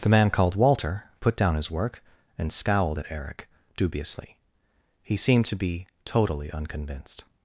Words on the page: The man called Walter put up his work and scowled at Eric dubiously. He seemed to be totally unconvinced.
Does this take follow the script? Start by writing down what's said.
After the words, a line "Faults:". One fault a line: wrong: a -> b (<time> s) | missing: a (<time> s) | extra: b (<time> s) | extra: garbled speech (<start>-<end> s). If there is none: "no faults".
The man called Walter put down his work and scowled at Eric dubiously. He seemed to be totally unconvinced.
Faults:
wrong: up -> down (1.4 s)